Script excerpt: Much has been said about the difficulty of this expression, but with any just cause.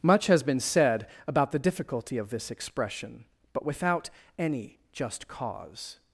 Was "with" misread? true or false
true